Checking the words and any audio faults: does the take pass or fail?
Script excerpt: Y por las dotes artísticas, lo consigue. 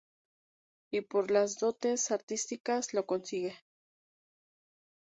pass